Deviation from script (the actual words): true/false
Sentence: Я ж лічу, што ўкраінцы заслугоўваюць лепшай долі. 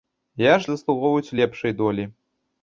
true